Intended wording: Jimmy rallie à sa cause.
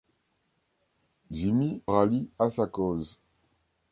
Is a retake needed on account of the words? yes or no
no